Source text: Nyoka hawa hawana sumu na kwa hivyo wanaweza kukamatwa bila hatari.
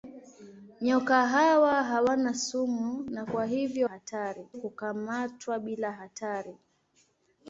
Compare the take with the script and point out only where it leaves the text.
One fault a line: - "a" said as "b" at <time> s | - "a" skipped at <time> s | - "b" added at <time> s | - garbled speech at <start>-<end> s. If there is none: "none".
- "wanaweza" said as "hatari" at 3.8 s